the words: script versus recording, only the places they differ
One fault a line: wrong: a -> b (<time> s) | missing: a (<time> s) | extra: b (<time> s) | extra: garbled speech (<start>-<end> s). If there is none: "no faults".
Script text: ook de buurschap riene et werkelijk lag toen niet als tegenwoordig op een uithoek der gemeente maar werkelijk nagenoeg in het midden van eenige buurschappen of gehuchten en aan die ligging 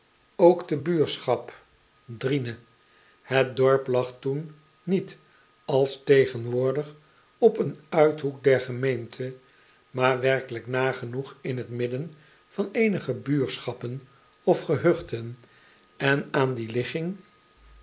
wrong: werkelijk -> dorp (3.6 s)